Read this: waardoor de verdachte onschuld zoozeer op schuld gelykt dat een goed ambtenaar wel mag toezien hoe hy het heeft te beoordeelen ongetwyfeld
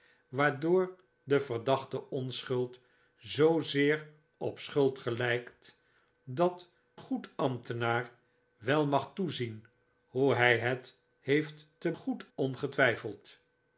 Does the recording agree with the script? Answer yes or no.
no